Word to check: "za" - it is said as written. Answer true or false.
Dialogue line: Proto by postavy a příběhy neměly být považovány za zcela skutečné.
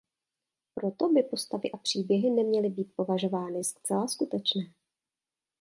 false